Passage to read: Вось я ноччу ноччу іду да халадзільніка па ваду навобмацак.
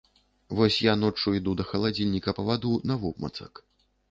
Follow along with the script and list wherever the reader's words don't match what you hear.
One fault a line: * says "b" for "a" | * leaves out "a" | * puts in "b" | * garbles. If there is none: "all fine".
* leaves out "ноччу"